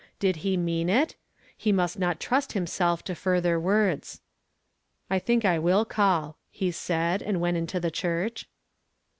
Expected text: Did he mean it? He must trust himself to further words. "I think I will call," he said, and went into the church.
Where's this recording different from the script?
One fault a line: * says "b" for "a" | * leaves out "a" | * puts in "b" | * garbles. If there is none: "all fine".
* puts in "not"